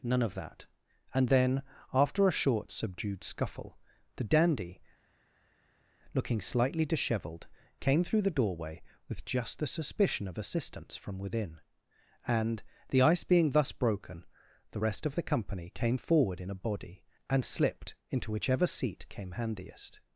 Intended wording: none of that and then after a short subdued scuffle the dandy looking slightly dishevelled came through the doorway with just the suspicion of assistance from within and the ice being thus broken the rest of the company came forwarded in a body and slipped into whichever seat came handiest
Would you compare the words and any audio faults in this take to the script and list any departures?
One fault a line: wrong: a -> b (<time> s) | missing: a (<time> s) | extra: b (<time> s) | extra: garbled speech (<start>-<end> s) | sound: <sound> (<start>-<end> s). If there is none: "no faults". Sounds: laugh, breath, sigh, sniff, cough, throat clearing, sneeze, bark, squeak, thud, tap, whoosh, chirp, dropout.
wrong: forwarded -> forward (16.0 s)